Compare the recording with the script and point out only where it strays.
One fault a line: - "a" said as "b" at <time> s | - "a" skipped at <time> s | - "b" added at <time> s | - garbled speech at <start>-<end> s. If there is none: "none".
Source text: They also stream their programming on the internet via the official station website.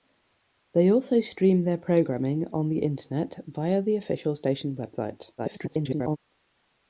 - garbled speech at 5.4-6.2 s